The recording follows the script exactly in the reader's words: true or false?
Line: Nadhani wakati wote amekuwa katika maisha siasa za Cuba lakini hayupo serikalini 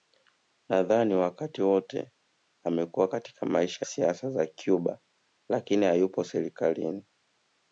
true